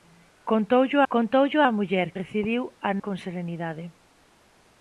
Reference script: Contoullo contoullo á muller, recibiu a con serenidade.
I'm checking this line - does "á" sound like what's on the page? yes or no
yes